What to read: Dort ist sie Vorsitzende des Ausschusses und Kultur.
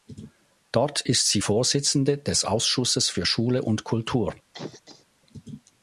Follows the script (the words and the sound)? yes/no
no